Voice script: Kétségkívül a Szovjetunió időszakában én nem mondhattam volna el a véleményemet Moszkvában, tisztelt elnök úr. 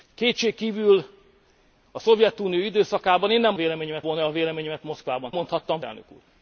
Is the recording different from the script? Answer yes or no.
yes